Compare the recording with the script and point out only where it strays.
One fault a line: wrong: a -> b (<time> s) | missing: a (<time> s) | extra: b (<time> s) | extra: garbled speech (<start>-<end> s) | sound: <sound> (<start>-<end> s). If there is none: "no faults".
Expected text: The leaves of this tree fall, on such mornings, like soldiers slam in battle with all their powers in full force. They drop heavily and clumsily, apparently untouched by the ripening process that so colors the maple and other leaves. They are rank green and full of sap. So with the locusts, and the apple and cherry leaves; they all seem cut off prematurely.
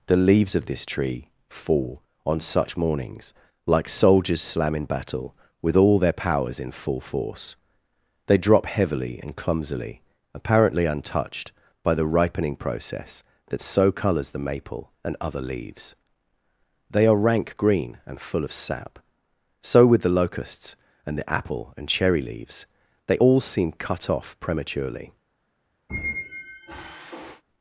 sound: squeak (25.9-27.4 s)